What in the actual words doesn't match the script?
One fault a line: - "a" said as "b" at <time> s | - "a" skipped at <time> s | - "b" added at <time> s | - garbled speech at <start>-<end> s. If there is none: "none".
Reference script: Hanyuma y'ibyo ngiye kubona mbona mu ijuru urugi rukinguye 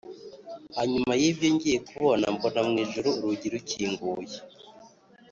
none